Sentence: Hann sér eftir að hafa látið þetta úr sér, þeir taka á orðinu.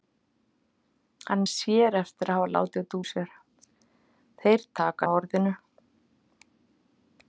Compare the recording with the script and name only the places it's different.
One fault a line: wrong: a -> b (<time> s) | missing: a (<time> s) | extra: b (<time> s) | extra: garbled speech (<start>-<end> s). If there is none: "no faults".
no faults